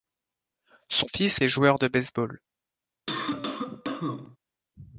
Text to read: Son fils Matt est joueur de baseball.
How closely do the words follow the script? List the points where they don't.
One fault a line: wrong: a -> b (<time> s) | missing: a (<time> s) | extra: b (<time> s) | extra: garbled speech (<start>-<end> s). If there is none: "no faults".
missing: Matt (1.4 s)